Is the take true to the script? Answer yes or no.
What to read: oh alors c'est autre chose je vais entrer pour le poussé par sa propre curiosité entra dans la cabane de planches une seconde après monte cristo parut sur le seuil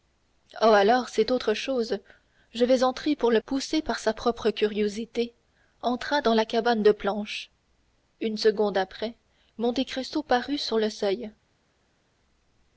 yes